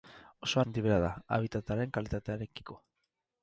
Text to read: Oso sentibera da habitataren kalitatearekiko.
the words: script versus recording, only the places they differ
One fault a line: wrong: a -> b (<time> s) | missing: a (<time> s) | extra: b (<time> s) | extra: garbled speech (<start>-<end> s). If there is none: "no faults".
no faults